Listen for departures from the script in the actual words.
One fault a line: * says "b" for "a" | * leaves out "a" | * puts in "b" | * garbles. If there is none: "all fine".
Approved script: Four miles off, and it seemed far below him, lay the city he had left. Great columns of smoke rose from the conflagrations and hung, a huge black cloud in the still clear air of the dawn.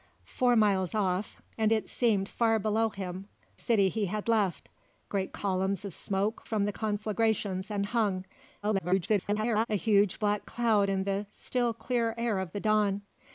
* leaves out "lay the"
* leaves out "rose"
* garbles